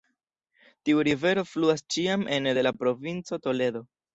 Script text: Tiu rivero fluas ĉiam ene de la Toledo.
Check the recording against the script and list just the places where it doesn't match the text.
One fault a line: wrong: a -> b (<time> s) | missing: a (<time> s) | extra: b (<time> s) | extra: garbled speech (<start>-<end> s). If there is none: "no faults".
extra: provinco (2.8 s)